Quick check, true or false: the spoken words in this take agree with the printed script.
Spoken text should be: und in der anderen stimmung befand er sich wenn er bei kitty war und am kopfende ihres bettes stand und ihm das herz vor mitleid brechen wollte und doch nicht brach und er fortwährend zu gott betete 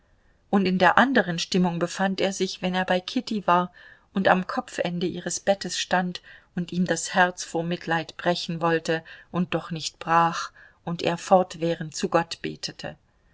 true